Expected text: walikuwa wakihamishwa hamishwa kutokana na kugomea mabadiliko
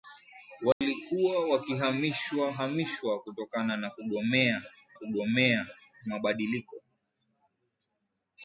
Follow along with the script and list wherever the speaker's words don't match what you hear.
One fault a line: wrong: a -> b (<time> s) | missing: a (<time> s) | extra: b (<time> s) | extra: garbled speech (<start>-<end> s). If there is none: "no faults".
extra: kugomea (4.9 s)